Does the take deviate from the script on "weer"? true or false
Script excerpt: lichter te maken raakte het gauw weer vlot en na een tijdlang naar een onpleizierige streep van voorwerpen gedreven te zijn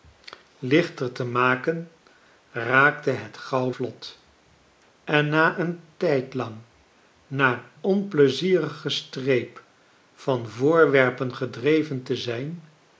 true